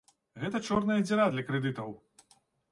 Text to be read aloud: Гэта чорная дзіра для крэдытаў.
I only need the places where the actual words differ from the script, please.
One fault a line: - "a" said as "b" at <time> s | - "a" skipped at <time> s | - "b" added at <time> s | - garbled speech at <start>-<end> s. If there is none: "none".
none